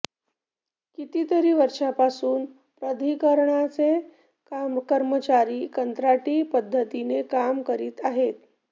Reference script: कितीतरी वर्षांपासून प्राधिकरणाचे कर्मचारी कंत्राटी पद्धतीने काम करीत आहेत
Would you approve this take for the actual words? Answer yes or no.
yes